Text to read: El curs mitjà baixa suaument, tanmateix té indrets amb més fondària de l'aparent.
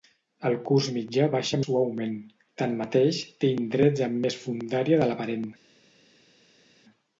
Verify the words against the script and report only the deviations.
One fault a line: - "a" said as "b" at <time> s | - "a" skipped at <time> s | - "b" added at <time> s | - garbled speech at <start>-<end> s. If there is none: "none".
none